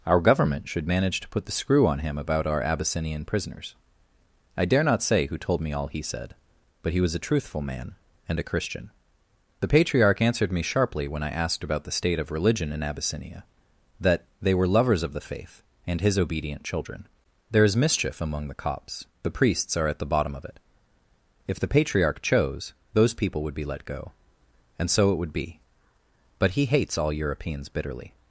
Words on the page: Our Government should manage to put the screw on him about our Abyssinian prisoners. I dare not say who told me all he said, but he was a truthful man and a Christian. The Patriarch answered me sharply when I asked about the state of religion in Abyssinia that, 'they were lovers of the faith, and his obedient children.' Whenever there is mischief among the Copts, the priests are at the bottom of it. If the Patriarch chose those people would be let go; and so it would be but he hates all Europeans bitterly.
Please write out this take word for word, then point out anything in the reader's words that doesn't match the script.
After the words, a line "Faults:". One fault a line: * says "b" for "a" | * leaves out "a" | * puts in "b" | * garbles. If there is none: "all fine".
Our Government should manage to put the screw on him about our Abyssinian prisoners. I dare not say who told me all he said, but he was a truthful man and a Christian. The Patriarch answered me sharply when I asked about the state of religion in Abyssinia that, 'they were lovers of the faith, and his obedient children.' there is mischief among the Copts, the priests are at the bottom of it. If the Patriarch chose those people would be let go; and so it would be but he hates all Europeans bitterly.
Faults:
* leaves out "Whenever"